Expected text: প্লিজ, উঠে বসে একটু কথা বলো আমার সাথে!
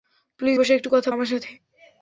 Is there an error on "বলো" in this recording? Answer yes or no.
yes